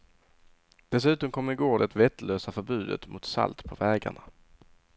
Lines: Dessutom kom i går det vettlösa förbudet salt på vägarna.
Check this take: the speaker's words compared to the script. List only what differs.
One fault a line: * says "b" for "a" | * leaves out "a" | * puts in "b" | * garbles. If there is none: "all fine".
* puts in "mot"